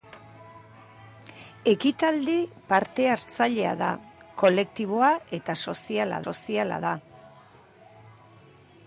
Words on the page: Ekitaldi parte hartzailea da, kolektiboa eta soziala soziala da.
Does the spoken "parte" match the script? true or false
true